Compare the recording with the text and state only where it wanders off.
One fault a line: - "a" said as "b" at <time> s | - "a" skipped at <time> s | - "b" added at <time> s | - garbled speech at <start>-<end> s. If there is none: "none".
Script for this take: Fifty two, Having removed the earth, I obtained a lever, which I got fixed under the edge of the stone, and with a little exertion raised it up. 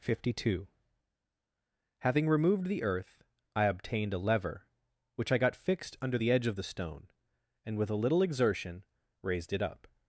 none